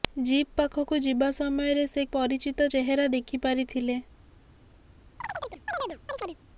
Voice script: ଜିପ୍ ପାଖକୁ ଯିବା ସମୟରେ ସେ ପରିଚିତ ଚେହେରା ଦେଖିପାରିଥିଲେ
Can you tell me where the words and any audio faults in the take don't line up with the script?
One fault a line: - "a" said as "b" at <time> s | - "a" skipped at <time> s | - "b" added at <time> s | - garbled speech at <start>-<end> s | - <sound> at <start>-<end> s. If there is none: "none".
- chirp at 5.2-6.4 s